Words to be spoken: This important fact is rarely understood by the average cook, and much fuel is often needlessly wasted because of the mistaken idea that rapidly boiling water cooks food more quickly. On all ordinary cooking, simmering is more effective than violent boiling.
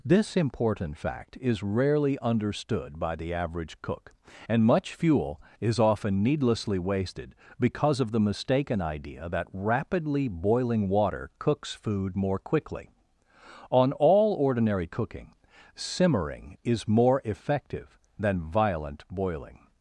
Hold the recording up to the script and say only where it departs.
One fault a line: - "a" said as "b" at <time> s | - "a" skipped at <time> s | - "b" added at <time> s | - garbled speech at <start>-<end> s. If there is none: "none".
none